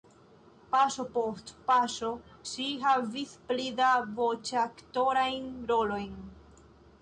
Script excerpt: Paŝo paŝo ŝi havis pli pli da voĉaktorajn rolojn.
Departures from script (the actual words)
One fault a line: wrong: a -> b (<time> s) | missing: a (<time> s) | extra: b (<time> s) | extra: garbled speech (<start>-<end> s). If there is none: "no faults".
extra: post (1.2 s)
missing: pli (3.6 s)